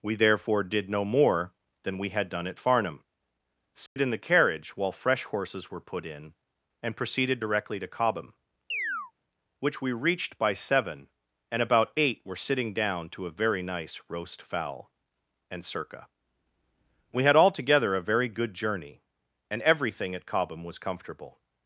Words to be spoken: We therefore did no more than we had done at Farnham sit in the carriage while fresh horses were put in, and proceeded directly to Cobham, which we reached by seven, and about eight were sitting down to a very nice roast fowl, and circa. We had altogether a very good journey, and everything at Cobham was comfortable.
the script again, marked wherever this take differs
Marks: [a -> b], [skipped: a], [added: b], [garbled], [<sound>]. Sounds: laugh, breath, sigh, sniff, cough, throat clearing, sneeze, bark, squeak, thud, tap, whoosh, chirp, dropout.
We therefore did no more than we had done at Farnham sit [dropout] in the carriage while fresh horses were put in, and proceeded directly to Cobham, [chirp] which we reached by seven, and about eight were sitting down to a very nice roast fowl, and circa. We had altogether a very good journey, and everything at Cobham was comfortable.